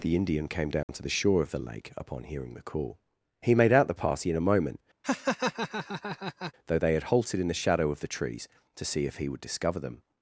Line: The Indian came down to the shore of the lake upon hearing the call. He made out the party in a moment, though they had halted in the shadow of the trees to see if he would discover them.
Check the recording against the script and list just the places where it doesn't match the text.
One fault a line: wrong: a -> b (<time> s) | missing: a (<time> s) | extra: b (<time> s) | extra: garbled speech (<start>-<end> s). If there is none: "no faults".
no faults